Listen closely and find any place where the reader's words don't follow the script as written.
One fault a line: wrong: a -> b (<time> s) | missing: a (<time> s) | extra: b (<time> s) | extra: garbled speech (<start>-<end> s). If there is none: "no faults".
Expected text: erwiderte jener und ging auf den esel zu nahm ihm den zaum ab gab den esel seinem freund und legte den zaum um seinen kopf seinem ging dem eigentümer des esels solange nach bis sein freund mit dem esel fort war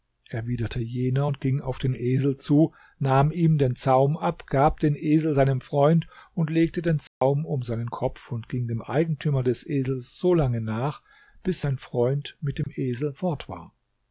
wrong: seinem -> und (8.3 s)